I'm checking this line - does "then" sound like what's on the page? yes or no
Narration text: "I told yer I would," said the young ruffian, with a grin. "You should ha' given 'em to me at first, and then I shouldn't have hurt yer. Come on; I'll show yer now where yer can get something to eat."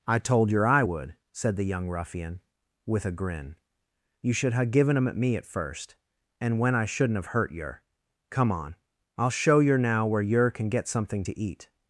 no